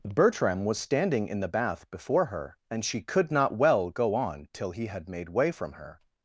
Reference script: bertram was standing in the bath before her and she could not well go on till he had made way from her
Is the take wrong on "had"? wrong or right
right